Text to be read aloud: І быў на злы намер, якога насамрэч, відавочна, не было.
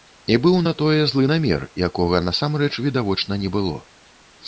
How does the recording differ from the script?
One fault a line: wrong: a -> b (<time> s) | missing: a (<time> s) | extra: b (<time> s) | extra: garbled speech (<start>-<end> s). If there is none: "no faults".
extra: тое (0.8 s)